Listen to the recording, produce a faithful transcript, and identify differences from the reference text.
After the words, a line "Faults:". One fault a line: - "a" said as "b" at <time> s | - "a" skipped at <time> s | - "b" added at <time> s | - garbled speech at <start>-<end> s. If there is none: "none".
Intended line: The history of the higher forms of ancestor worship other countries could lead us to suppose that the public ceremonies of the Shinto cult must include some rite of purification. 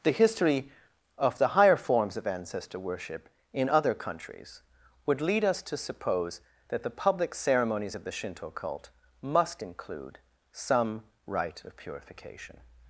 The history of the higher forms of ancestor worship in other countries would lead us to suppose that the public ceremonies of the Shinto cult must include some rite of purification.
Faults:
- "in" added at 3.5 s
- "could" said as "would" at 5.0 s